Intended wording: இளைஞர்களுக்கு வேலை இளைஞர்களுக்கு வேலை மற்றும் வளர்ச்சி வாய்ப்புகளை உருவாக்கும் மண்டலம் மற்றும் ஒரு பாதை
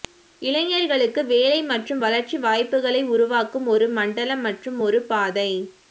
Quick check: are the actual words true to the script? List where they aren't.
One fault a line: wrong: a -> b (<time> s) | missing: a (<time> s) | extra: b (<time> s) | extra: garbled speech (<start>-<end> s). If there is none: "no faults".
missing: இளைஞர்களுக்கு வேலை (1.6 s)
extra: ஒரு (3.7 s)